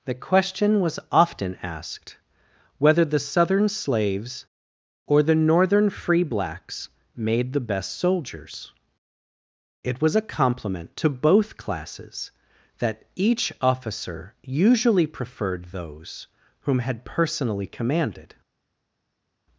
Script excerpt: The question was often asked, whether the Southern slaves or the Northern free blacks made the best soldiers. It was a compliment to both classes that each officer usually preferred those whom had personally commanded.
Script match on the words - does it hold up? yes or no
yes